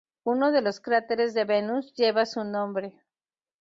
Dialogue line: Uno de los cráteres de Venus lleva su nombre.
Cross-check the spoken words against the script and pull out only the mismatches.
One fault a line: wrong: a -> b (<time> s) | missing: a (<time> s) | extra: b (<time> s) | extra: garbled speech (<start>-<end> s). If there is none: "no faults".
no faults